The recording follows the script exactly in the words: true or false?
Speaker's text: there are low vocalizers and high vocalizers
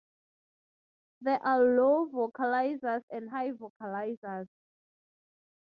true